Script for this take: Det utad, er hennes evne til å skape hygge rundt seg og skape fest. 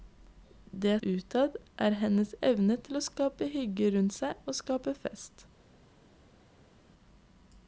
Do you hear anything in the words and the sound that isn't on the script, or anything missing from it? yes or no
no